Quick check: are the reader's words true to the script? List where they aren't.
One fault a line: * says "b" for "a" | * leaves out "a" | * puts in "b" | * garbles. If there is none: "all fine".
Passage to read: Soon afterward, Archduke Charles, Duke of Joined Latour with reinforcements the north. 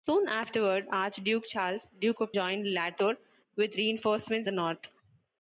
all fine